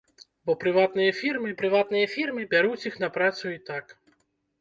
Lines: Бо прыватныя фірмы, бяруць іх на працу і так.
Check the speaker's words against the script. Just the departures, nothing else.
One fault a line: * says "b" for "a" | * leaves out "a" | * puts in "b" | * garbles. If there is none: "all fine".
* puts in "прыватныя фірмы"